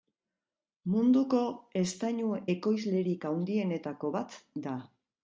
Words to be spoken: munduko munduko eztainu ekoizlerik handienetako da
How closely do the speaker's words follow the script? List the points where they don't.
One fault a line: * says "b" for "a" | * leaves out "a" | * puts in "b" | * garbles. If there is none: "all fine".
* leaves out "munduko"
* puts in "bat"